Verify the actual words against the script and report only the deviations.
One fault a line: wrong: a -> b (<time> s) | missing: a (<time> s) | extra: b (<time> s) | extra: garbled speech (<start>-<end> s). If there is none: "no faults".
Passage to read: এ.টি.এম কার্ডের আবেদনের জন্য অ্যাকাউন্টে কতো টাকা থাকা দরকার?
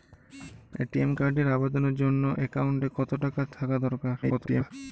extra: garbled speech (4.2-4.7 s)